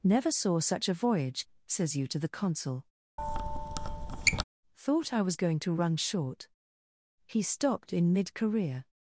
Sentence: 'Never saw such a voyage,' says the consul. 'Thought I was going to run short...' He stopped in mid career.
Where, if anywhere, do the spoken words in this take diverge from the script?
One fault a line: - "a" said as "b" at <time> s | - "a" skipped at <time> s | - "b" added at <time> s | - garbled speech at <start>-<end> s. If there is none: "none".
- "you to" added at 1.9 s